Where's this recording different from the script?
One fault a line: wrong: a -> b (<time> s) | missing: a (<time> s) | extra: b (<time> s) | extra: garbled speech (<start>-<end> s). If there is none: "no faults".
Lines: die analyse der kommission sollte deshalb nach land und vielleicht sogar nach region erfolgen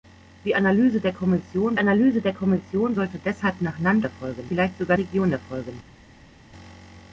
extra: analyse der kommission (1.8 s)
wrong: und -> erfolgen (4.0 s)
missing: nach (5.0 s)